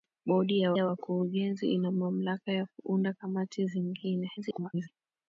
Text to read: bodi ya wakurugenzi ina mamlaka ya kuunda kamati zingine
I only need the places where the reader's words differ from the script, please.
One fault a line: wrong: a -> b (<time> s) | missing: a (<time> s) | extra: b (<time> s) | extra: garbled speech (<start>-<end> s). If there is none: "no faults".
extra: ya (0.7 s)
extra: garbled speech (4.4-4.9 s)